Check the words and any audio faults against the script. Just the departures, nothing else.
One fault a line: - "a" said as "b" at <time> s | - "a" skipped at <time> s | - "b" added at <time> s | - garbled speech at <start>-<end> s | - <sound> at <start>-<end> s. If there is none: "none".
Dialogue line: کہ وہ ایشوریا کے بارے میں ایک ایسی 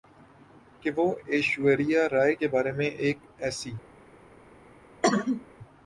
- "رائے" added at 2.1 s
- cough at 5.0-5.5 s